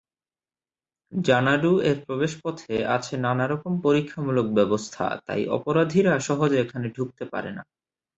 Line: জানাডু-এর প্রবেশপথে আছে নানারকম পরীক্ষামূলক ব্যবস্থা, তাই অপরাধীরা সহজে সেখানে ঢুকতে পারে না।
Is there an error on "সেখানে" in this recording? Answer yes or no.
yes